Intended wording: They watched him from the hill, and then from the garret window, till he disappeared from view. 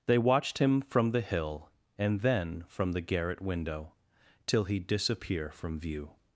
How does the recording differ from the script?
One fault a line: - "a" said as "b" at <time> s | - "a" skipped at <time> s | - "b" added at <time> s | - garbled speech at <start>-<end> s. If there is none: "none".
- "disappeared" said as "disappear" at 4.8 s